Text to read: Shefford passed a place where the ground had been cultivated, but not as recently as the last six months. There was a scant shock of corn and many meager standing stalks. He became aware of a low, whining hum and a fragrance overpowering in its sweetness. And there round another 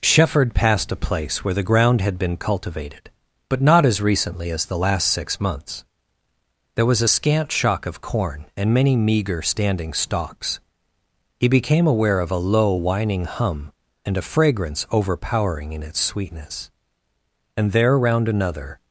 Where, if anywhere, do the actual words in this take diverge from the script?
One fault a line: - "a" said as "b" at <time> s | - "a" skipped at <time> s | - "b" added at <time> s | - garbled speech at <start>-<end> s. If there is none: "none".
none